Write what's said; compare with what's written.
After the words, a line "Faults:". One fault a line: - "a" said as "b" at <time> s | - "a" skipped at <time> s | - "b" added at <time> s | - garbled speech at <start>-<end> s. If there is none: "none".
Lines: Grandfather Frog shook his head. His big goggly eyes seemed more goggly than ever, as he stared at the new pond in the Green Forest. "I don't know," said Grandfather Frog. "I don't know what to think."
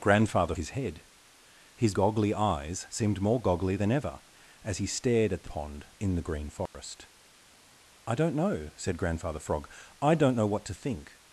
Grandfather His head. His goggly eyes seemed more goggly than ever, as he stared at the pond in the Green Forest. "I don't know," said Grandfather Frog. "I don't know what to think."
Faults:
- "Frog shook" skipped at 0.6 s
- "big" skipped at 1.9 s
- "new" skipped at 5.5 s